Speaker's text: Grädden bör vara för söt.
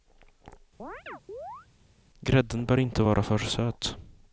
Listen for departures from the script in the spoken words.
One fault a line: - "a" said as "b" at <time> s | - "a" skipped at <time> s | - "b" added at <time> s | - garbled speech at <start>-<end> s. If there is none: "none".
- "inte" added at 2.8 s